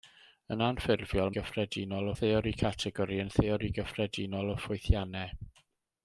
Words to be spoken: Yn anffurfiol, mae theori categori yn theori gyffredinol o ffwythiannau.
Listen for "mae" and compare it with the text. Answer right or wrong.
wrong